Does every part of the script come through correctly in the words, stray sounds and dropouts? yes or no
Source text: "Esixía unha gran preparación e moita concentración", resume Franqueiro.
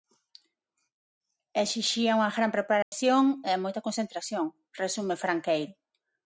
no